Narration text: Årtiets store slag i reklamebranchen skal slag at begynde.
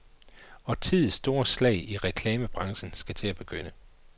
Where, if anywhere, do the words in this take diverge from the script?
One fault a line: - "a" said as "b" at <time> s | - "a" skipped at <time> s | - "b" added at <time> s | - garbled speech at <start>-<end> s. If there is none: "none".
- "slag" said as "til" at 3.1 s